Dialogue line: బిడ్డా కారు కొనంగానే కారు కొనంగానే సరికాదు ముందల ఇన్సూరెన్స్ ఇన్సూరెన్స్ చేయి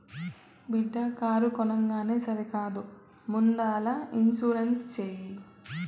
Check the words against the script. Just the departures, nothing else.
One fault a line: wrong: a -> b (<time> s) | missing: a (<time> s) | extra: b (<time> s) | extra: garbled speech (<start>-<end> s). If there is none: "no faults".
missing: కారు కొనంగానే (2.2 s)
missing: ఇన్సూరెన్స్ (4.9 s)